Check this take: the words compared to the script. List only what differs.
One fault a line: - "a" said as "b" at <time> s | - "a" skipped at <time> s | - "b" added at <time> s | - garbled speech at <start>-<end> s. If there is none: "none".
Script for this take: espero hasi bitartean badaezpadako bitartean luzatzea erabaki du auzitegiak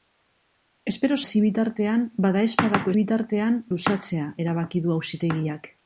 none